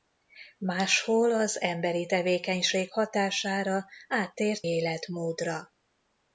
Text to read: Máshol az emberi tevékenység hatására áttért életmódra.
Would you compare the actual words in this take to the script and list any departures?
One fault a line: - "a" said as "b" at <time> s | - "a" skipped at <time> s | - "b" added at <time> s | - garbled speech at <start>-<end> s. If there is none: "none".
none